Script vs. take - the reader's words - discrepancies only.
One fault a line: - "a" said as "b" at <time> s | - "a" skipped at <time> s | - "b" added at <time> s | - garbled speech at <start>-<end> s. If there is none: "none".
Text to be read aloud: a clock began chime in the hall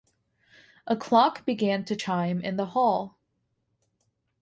- "to" added at 1.8 s